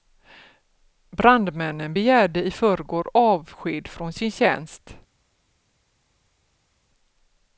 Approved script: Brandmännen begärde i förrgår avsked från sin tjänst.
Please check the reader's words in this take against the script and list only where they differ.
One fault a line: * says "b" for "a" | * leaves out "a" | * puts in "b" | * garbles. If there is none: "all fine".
all fine